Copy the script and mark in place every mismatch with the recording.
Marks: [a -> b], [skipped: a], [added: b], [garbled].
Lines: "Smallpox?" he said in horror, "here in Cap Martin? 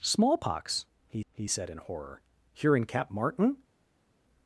"Smallpox?" he [added: he] said in horror, "here in Cap Martin?